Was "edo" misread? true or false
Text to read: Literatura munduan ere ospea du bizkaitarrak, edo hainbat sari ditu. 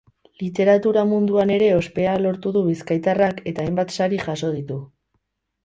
true